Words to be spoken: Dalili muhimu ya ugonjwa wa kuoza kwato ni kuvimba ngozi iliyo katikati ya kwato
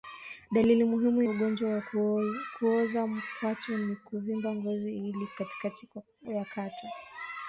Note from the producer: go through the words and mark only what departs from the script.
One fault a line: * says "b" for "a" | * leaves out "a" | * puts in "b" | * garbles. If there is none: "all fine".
* leaves out "ya"